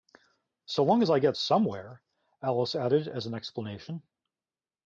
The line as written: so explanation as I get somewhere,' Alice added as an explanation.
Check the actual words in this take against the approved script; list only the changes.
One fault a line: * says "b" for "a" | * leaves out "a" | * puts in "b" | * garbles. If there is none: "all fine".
* says "long" for "explanation"